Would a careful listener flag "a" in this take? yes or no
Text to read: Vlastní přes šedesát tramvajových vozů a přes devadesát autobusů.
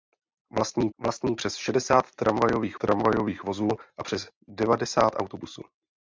no